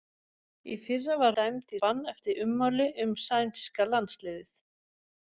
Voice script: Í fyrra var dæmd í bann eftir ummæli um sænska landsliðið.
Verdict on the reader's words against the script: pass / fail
pass